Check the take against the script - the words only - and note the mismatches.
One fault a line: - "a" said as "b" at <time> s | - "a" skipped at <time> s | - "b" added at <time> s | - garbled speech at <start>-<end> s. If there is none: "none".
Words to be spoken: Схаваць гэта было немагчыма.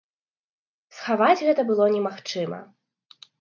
none